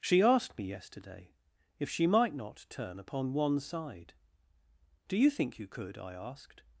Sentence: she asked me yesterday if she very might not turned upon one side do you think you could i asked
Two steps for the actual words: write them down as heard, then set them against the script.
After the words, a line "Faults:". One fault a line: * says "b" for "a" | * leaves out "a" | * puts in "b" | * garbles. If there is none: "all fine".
she asked me yesterday if she might not turn upon one side do you think you could i asked
Faults:
* leaves out "very"
* says "turn" for "turned"